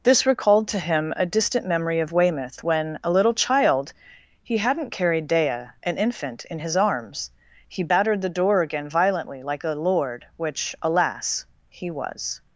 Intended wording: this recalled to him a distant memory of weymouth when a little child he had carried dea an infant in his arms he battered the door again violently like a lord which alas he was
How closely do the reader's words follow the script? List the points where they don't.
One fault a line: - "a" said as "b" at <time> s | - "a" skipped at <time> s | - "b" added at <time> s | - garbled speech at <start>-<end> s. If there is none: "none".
- "had" said as "hadn't" at 4.6 s